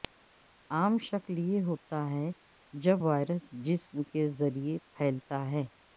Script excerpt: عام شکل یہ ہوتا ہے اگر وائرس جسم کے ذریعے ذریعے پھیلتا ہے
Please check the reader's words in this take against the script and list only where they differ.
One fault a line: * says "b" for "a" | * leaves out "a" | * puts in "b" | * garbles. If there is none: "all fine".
* says "جب" for "اگر"
* leaves out "ذریعے"